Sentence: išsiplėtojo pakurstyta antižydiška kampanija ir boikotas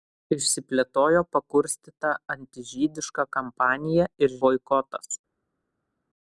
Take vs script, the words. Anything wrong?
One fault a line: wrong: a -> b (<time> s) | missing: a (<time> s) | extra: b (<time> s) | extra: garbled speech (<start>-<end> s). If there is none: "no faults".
no faults